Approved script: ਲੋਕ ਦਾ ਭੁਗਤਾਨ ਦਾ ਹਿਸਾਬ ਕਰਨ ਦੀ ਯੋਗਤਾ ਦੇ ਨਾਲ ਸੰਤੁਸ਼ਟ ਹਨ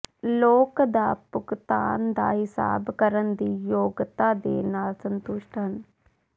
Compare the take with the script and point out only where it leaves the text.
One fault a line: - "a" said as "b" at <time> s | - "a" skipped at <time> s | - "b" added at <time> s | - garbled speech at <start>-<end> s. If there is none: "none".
none